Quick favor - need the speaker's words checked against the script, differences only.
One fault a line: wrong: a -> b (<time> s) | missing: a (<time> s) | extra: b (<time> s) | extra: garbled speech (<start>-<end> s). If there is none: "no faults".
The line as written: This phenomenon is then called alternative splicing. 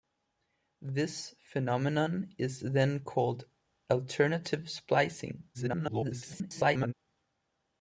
extra: garbled speech (5.5-6.9 s)